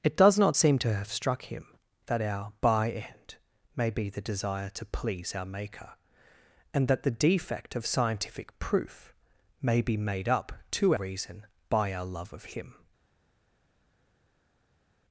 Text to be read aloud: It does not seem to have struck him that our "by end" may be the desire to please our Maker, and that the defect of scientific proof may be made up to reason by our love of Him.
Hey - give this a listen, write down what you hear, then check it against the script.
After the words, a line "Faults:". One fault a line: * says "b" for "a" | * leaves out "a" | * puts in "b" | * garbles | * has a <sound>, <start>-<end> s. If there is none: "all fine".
It does not seem to have struck him that our "by end" may be the desire to please our Maker, and that the defect of scientific proof may be made up to reason by our love of Him.
Faults:
all fine